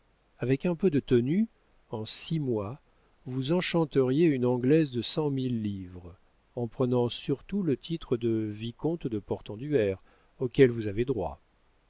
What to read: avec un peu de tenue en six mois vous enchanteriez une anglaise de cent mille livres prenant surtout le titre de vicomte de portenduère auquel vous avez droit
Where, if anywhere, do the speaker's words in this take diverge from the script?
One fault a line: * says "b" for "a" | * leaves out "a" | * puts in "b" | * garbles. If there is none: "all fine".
* puts in "en"